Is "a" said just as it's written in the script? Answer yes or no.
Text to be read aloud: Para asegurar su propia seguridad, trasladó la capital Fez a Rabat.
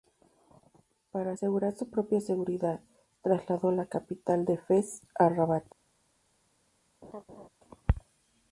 yes